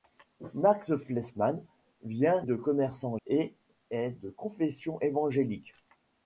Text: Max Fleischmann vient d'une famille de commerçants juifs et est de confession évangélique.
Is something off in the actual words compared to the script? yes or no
yes